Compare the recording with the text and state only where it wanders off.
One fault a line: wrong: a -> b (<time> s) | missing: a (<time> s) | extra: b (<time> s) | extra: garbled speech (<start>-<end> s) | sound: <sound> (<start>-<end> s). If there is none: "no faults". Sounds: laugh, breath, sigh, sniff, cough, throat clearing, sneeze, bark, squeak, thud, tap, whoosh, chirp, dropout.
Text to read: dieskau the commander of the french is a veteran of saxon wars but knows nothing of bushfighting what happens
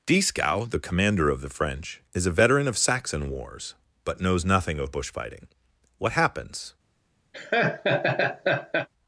sound: laugh (7.3-8.9 s)